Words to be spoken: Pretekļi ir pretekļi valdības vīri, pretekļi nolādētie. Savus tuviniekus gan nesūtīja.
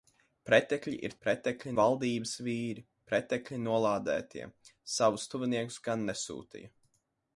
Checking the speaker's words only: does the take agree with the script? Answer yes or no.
yes